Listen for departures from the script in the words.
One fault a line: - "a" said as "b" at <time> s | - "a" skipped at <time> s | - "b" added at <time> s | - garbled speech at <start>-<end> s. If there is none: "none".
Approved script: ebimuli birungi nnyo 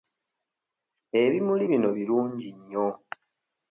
- "bino" added at 1.7 s